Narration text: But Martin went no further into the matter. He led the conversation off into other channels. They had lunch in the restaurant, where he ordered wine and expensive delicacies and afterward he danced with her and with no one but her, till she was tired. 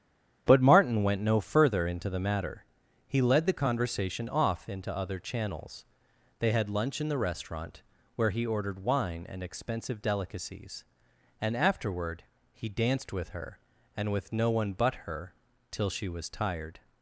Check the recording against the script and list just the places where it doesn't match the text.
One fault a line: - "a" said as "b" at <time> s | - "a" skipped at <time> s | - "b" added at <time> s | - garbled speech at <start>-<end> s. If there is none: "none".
none